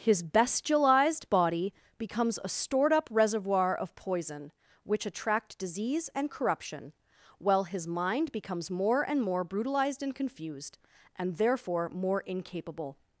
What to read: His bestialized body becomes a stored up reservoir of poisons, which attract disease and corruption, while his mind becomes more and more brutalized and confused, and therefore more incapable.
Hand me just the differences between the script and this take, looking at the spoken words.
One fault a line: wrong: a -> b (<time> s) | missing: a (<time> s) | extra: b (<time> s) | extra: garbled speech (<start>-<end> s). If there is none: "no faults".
wrong: poisons -> poison (4.0 s)